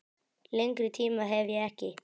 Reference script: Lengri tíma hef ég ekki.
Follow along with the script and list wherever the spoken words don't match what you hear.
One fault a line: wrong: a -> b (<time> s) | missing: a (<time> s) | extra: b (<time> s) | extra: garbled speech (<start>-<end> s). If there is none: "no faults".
no faults